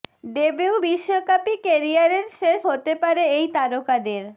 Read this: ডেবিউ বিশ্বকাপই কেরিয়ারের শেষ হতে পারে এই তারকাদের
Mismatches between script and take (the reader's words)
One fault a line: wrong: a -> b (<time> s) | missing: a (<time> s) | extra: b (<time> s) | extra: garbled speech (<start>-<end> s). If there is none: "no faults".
no faults